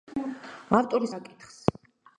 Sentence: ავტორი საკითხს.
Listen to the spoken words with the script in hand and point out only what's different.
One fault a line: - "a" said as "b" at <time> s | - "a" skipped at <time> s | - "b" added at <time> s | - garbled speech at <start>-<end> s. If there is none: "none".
none